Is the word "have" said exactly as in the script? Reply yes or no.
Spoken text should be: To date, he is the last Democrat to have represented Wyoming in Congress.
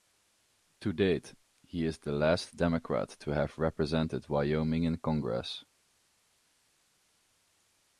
yes